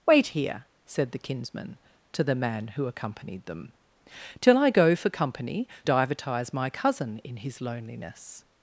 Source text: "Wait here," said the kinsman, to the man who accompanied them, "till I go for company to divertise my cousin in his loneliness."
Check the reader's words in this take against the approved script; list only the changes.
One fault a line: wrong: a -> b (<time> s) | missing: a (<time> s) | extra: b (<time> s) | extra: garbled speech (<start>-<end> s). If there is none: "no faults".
missing: to (5.7 s)